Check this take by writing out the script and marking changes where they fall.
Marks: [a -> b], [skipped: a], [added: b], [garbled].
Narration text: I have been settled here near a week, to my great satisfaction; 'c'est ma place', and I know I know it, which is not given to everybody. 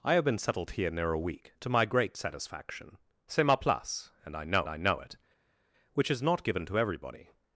I have been settled here near a week, to my great satisfaction; 'c'est ma place', and I know I know it, which is not given to everybody.